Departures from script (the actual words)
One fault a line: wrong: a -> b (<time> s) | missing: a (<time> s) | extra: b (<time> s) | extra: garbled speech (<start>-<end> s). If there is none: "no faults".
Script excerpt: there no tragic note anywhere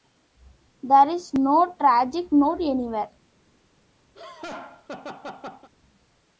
extra: is (1.1 s)